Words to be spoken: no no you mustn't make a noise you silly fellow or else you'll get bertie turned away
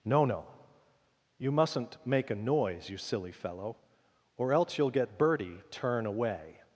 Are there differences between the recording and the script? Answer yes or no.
yes